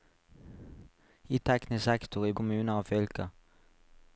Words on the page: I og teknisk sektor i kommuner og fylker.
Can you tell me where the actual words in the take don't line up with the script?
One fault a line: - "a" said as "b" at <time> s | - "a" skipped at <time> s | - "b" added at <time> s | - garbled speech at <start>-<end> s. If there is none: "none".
none